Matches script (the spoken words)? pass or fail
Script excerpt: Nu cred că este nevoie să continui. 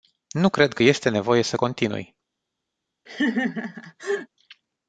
pass